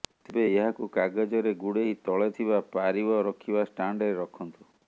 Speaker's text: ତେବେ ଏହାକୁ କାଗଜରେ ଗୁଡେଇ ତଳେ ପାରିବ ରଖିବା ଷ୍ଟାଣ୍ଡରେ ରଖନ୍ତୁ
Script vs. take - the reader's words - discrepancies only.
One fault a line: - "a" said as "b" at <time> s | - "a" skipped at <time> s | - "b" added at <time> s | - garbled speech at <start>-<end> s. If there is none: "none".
- "ଥିବା" added at 2.3 s